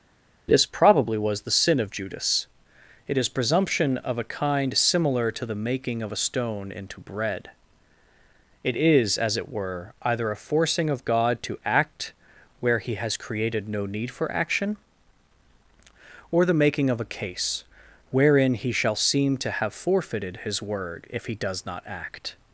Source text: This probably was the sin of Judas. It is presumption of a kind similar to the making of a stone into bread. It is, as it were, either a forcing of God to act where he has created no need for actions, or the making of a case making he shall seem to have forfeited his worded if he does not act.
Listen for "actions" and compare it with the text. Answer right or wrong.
wrong